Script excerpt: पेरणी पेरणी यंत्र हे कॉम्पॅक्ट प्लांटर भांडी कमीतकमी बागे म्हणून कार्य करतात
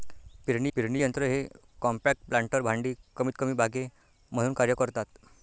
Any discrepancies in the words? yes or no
no